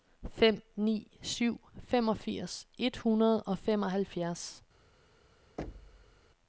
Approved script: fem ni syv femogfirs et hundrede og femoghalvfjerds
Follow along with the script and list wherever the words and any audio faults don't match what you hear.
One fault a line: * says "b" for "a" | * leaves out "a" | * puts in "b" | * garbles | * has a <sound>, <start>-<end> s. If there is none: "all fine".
* has a thud, 5.6-6.2 s